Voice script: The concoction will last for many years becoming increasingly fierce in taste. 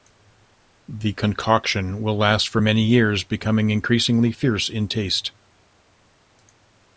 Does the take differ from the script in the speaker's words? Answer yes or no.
no